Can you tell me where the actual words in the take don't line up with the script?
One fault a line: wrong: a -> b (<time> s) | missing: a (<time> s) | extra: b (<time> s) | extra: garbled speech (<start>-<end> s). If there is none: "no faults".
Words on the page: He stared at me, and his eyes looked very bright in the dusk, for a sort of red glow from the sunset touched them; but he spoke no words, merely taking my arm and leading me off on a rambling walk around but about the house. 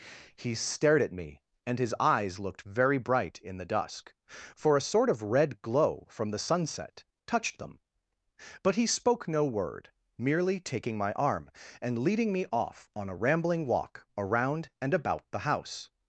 wrong: words -> word (9.4 s)
wrong: but -> and (14.8 s)